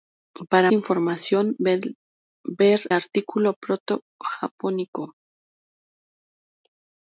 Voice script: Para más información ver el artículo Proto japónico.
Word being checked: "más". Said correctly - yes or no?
no